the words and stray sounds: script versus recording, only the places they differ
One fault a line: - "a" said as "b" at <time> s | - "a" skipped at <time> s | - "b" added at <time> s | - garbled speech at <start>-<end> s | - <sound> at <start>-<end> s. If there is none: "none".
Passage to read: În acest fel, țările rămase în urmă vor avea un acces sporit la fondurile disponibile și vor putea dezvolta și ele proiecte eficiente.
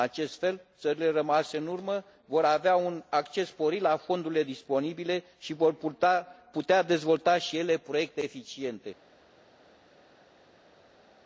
none